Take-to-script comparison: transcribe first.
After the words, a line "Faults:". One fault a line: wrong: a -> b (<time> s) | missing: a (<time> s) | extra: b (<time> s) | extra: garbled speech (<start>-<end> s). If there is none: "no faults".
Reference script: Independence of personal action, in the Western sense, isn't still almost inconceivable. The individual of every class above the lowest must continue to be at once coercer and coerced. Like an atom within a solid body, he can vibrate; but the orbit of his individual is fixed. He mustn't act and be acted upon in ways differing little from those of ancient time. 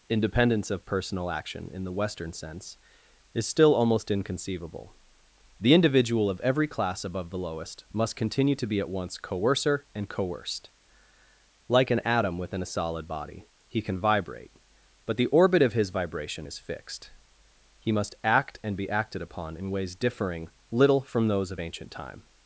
Independence of personal action, in the Western sense, is still almost inconceivable. The individual of every class above the lowest must continue to be at once coercer and coerced. Like an atom within a solid body, he can vibrate; but the orbit of his vibration is fixed. He must act and be acted upon in ways differing little from those of ancient time.
Faults:
wrong: isn't -> is (3.3 s)
wrong: individual -> vibration (15.9 s)
wrong: mustn't -> must (17.9 s)